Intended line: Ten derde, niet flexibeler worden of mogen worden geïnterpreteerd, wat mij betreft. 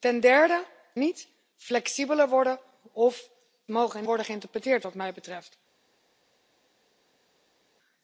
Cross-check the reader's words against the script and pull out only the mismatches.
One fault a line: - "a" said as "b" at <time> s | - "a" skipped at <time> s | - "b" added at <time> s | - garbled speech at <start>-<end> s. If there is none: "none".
none